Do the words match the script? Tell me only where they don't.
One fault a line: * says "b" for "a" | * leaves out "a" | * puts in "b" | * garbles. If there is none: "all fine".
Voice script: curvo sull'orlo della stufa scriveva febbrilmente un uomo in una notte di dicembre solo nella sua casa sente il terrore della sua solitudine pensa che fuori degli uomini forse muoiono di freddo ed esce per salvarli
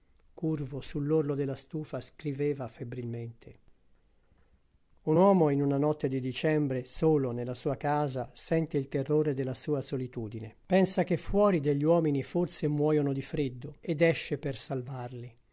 all fine